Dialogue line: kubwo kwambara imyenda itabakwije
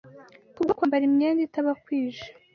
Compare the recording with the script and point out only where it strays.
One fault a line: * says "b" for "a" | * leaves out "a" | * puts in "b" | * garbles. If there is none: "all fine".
all fine